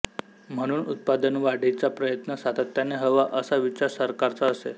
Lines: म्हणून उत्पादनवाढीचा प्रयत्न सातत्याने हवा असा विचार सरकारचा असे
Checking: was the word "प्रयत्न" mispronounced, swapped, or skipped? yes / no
no